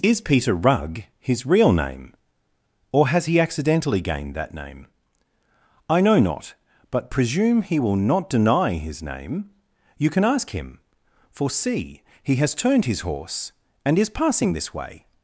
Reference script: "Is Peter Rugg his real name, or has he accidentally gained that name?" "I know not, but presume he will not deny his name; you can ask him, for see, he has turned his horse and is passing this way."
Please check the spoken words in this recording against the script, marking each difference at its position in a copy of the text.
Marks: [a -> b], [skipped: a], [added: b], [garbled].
"Is Peter Rugg his real name, or has he accidentally gained that name?" "I know not, but presume he will not deny his name; you can ask him, for see, he has turned his horse and is passing this way."